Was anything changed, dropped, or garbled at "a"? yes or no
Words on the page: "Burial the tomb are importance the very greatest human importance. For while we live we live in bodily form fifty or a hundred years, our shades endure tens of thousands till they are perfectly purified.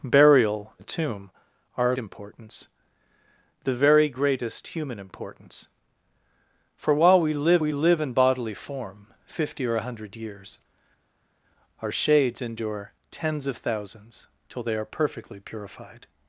no